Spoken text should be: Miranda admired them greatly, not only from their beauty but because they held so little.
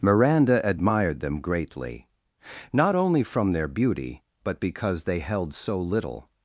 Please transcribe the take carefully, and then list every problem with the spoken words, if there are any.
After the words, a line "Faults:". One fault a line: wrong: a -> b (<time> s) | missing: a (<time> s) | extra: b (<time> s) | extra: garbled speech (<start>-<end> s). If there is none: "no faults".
Miranda admired them greatly, not only from their beauty but because they held so little.
Faults:
no faults